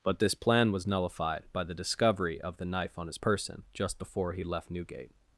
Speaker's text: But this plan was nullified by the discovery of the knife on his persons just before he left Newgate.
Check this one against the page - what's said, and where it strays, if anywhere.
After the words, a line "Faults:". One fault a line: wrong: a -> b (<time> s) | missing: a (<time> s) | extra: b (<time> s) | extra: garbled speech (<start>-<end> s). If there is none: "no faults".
But this plan was nullified by the discovery of the knife on his person just before he left Newgate.
Faults:
wrong: persons -> person (3.1 s)